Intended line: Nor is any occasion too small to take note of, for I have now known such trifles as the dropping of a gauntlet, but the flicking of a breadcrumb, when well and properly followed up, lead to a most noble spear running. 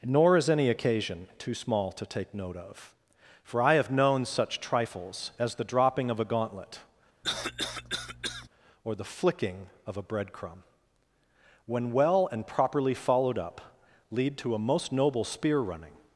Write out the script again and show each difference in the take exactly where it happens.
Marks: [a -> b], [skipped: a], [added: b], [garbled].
Nor is any occasion too small to take note of, for I have [skipped: now] known such trifles as the dropping of a gauntlet, [but -> or] the flicking of a breadcrumb, when well and properly followed up, lead to a most noble spear running.